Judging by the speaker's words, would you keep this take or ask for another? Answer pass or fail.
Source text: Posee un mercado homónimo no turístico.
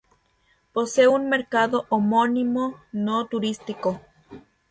pass